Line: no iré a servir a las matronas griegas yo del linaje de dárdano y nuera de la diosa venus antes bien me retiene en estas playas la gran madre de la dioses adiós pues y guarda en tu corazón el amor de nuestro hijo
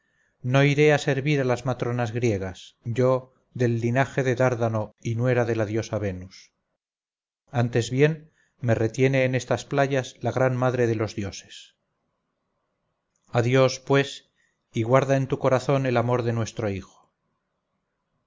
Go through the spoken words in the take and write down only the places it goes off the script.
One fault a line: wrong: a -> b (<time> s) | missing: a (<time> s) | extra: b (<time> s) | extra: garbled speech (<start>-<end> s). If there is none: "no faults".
wrong: la -> los (11.0 s)